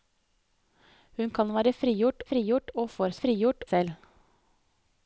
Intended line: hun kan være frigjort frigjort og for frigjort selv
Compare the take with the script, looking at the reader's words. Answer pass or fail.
pass